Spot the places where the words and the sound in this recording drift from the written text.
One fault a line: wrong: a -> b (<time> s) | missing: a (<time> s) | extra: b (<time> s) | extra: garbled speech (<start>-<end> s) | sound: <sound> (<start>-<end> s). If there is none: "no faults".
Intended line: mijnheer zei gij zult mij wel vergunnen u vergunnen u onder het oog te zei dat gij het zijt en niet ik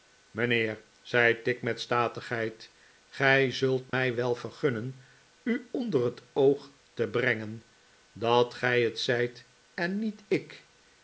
extra: tigg met statigheid (1.4 s)
sound: dropout (3.9-3.9 s)
missing: vergunnen u (5.7 s)
wrong: zei -> brengen (7.1 s)